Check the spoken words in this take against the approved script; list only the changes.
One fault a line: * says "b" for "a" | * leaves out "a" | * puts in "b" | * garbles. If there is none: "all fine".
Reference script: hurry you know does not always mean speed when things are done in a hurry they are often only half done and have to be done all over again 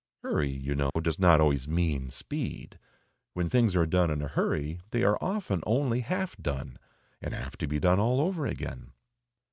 all fine